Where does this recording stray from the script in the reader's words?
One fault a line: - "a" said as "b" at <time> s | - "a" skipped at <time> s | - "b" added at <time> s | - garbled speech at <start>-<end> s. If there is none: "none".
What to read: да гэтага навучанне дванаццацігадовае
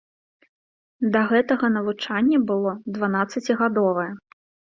- "было" added at 2.5 s